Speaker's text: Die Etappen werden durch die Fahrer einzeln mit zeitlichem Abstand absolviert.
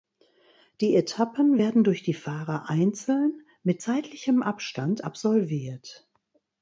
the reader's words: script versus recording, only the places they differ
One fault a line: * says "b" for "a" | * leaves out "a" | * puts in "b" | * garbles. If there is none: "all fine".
all fine